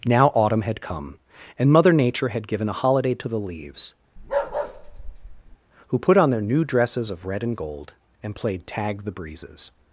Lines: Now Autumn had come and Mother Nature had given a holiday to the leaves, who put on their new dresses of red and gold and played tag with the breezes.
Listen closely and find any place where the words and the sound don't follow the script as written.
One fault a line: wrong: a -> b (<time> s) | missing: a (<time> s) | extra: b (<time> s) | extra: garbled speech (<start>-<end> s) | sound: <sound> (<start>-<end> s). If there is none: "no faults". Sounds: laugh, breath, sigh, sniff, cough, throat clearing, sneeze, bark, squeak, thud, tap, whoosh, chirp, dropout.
sound: bark (4.2-5.6 s)
missing: with (9.0 s)